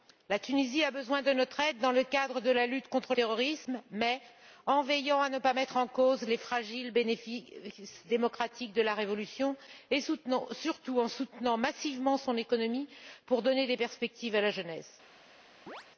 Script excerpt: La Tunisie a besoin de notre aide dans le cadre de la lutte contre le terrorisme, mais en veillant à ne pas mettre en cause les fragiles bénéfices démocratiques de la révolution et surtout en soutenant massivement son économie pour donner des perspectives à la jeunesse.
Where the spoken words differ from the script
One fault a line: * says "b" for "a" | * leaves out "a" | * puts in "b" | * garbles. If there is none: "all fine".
* leaves out "le"